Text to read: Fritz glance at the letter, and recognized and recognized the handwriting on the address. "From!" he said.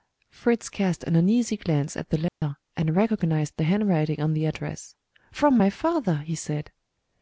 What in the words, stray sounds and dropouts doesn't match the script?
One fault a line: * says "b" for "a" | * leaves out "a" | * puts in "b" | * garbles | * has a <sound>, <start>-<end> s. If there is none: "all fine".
* puts in "cast an uneasy"
* has a dropout, 2.3-2.4 s
* leaves out "and recognized"
* puts in "my father"